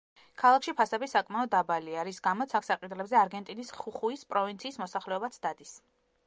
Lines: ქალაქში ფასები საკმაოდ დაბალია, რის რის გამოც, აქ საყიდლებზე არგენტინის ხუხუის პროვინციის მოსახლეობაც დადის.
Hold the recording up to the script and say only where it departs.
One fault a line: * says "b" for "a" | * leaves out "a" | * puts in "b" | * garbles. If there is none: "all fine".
* leaves out "რის"